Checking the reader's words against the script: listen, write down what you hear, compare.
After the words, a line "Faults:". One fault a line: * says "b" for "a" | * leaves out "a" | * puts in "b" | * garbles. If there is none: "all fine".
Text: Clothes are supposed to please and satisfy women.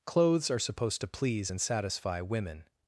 Clothes are supposed to please and satisfy women.
Faults:
all fine